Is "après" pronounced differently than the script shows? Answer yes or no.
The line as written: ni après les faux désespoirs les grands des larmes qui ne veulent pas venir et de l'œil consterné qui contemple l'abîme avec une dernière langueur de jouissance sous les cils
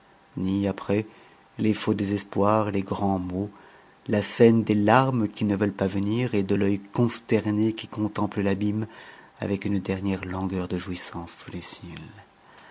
no